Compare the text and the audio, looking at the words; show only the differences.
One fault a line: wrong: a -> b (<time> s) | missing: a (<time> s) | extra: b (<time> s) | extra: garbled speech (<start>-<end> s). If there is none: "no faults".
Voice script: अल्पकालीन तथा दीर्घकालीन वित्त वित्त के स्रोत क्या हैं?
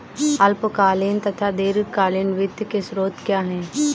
missing: वित्त (2.6 s)